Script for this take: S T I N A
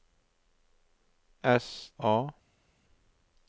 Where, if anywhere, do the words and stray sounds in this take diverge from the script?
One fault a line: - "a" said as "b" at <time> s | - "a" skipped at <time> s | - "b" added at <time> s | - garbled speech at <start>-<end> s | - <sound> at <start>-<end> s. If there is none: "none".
- "T I N" skipped at 1.9 s